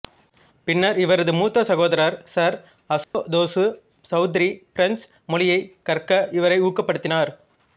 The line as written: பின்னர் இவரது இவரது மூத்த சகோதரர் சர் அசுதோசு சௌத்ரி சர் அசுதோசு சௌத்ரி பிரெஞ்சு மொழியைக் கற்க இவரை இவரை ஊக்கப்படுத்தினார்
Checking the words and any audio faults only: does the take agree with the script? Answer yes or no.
no